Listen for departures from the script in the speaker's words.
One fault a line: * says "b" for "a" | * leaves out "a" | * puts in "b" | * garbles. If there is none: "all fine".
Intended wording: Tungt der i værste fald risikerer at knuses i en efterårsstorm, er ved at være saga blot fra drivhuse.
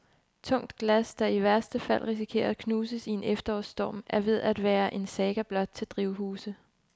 * puts in "glas"
* puts in "en"
* says "til" for "fra"